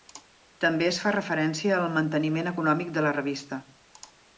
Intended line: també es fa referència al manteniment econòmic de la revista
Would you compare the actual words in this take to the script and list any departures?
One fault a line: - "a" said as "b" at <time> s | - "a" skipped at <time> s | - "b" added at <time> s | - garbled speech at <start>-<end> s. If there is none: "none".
none